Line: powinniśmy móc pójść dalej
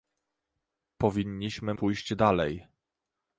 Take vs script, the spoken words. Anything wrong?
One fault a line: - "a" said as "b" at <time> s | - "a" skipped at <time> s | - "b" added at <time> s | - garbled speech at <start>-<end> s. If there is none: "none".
- "móc" skipped at 1.7 s